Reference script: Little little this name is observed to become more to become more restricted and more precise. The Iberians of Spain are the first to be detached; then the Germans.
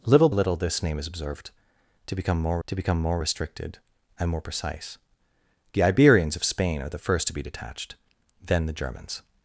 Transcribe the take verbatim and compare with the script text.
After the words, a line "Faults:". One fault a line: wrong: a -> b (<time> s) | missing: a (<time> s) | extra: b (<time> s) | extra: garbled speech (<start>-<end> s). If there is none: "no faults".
Little little this name is observed to become more to become more restricted and more precise. The Iberians of Spain are the first to be detached; then the Germans.
Faults:
no faults